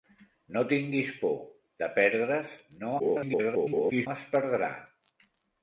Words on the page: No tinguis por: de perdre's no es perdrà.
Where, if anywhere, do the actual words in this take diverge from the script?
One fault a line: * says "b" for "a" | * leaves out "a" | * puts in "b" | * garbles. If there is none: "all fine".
* garbles